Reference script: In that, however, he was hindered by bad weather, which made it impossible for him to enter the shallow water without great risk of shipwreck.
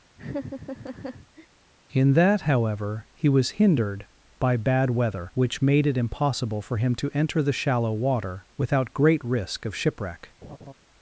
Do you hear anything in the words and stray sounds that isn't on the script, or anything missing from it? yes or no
yes